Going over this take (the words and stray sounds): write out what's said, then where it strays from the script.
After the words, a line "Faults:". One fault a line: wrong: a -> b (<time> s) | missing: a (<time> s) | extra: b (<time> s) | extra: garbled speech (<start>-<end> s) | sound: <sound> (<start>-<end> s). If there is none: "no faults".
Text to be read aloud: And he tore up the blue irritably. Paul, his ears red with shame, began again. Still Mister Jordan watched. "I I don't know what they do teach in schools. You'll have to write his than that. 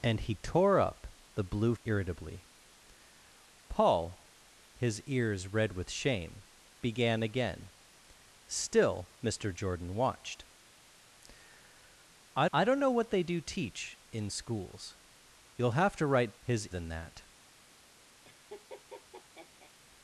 And he tore up the blue irritably. Paul, his ears red with shame, began again. Still Mister Jordan watched. "I I don't know what they do teach in schools. You'll have to write his than that.
Faults:
sound: laugh (18.2-19.7 s)